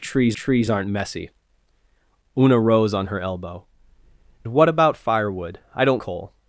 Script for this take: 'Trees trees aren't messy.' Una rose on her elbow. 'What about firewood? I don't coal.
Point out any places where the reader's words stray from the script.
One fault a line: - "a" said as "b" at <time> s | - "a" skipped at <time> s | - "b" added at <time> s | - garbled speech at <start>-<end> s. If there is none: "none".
none